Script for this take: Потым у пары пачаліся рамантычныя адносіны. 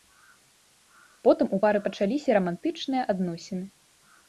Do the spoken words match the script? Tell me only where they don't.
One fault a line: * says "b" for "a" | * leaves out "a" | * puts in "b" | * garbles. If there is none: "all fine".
all fine